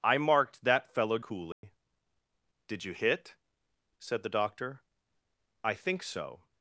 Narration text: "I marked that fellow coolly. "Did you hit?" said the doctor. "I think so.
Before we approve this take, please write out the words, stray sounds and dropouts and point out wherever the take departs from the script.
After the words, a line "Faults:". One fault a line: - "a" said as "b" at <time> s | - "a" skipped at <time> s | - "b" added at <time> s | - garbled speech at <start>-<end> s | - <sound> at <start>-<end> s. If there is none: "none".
"I marked that fellow coolly. "Did you hit?" said the doctor. "I think so.
Faults:
- dropout at 1.5-1.6 s